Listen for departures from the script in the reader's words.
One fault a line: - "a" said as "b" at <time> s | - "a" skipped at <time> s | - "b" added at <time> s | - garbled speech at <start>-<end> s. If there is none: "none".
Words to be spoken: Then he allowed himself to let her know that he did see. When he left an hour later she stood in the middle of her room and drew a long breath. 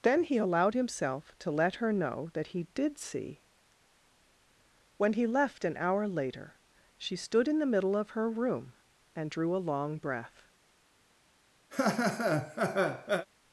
none